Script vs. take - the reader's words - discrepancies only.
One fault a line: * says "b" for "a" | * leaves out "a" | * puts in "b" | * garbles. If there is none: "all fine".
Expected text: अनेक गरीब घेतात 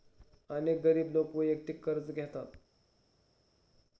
* puts in "लोक वैयक्तिक कर्ज"